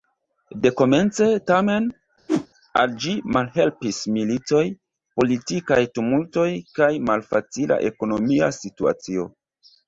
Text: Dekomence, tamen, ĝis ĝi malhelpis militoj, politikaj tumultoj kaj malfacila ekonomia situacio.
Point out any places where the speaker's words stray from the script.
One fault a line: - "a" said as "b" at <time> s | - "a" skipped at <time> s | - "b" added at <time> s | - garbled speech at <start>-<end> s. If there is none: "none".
- "ĝis" said as "al" at 2.8 s